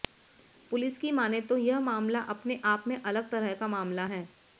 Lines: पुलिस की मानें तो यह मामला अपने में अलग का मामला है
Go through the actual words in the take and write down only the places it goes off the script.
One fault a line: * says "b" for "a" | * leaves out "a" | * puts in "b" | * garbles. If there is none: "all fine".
* puts in "आप"
* puts in "तरह"